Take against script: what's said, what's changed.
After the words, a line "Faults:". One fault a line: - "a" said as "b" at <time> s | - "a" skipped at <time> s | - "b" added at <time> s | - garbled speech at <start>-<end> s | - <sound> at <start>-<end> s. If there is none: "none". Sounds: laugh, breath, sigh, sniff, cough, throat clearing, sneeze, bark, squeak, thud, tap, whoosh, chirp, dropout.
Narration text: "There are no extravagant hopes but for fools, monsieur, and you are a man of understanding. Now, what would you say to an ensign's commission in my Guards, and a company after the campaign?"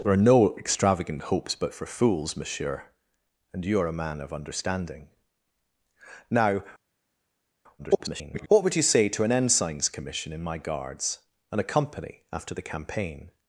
"There are no extravagant hopes but for fools, monsieur, and you are a man of understanding. Now, [garbled] what would you say to an ensign's commission in my Guards, and a company after the campaign?"
Faults:
- garbled speech at 7.8-8.5 s